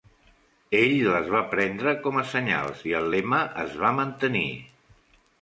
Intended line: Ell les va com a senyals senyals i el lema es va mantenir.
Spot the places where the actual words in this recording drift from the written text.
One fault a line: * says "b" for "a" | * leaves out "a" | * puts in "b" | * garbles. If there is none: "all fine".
* puts in "prendre"
* leaves out "senyals"